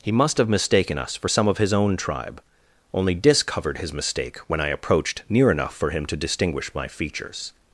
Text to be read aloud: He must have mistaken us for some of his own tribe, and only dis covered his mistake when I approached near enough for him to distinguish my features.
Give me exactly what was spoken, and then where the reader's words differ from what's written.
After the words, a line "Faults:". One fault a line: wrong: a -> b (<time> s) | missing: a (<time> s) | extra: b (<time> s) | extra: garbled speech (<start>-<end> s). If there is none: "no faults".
He must have mistaken us for some of his own tribe, only dis covered his mistake when I approached near enough for him to distinguish my features.
Faults:
missing: and (2.4 s)